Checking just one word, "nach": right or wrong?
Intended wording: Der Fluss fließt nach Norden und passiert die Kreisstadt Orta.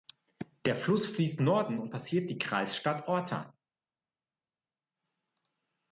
wrong